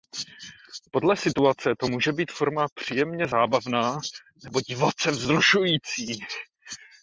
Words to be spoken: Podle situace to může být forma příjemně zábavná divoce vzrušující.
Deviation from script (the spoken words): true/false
true